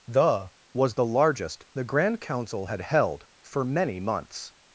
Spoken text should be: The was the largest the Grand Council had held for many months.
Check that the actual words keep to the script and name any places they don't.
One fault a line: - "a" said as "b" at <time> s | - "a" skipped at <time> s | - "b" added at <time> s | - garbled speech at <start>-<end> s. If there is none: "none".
none